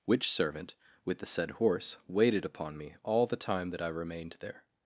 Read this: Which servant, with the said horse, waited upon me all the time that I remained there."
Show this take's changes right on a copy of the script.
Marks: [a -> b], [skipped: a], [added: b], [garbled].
Which servant, with the said horse, waited upon me all the time that I remained there."